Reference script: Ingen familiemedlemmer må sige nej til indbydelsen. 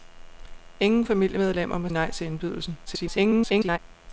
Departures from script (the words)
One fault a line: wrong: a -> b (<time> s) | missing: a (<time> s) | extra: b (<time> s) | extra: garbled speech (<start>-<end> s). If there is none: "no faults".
missing: sige (1.9 s)
extra: garbled speech (2.9-3.8 s)